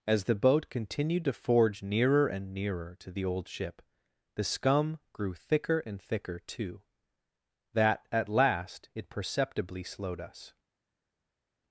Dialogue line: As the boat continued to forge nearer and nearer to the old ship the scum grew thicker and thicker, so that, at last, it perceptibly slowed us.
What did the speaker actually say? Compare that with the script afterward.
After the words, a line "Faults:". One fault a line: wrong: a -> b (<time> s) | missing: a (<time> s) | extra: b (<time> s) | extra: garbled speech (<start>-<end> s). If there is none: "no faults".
As the boat continued to forge nearer and nearer to the old ship the scum grew thicker and thicker, too that, at last, it perceptibly slowed us.
Faults:
wrong: so -> too (6.4 s)